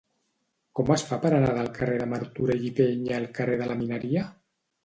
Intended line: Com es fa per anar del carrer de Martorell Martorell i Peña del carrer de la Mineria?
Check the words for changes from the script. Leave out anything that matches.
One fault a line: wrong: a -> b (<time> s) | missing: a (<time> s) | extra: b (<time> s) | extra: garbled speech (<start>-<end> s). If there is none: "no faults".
missing: Martorell (2.7 s)
wrong: del -> al (3.2 s)